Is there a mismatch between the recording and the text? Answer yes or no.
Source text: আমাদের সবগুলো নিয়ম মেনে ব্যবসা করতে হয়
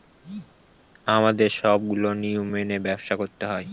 no